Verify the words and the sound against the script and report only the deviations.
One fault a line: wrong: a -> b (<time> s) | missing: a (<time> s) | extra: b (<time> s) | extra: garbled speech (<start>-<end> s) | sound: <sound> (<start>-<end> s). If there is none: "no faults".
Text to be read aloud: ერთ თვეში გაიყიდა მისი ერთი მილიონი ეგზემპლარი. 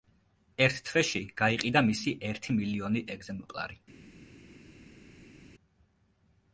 no faults